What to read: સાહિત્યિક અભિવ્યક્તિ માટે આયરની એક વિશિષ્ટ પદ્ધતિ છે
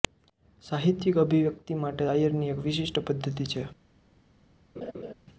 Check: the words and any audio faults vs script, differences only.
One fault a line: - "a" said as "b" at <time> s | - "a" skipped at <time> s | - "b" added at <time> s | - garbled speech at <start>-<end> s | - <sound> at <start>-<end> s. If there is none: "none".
- laugh at 4.8-5.1 s